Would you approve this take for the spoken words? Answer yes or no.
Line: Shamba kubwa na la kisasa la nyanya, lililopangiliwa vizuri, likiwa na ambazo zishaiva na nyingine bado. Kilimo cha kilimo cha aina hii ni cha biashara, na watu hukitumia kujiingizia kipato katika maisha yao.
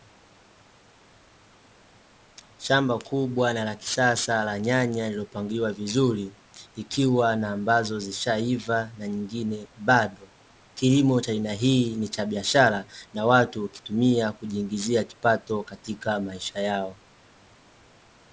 no